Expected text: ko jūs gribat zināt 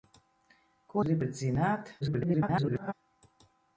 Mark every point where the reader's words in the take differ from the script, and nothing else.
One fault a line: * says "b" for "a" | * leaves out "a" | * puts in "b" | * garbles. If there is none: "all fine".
* leaves out "jūs"
* garbles